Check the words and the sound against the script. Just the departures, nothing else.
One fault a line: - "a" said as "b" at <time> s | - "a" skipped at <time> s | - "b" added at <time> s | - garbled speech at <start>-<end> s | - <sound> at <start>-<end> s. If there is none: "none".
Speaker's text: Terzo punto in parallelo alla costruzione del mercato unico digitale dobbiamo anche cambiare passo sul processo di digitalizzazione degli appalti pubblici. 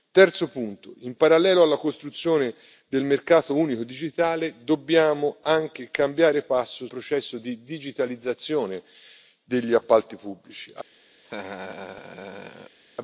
- "sul" skipped at 6.9 s
- laugh at 11.2-12.8 s